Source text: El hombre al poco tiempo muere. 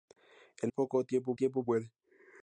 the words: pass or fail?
fail